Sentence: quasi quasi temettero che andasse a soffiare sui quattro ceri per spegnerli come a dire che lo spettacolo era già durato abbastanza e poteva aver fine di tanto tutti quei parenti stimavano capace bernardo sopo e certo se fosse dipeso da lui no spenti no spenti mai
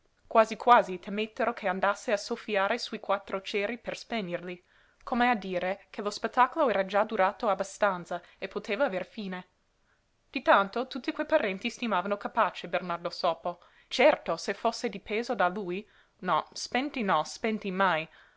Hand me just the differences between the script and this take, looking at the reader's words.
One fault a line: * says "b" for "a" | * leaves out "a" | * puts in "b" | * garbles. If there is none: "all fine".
* leaves out "e"